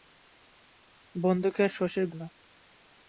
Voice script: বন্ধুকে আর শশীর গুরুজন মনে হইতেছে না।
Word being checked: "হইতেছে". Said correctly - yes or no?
no